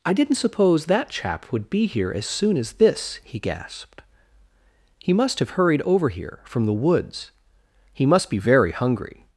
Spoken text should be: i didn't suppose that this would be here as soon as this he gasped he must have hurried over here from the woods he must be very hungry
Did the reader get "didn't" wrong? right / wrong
right